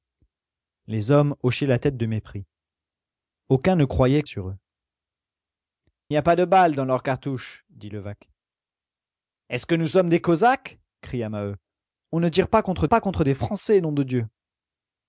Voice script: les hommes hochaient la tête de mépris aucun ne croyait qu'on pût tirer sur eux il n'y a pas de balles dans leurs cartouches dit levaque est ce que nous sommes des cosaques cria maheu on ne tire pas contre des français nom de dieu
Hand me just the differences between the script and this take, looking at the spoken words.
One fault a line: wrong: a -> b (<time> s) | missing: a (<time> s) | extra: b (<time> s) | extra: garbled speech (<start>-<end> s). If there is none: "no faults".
missing: qu'on pût tirer (4.2 s)
missing: il (4.6 s)
extra: pas contre (12.9 s)